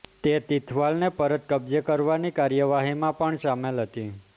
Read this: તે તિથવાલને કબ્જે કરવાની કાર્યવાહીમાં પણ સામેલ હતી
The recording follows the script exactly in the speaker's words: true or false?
false